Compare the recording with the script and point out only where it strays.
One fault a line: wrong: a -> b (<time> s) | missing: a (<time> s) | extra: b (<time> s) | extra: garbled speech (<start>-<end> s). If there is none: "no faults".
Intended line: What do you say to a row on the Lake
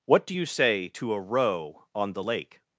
no faults